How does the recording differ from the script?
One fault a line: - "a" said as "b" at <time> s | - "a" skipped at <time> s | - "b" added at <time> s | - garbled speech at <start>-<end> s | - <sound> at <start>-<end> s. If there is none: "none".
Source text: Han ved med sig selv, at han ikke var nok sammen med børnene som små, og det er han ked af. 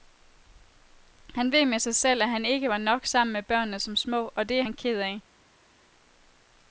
none